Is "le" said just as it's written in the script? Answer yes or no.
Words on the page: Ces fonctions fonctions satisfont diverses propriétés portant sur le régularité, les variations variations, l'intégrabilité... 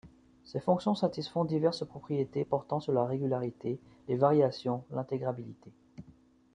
no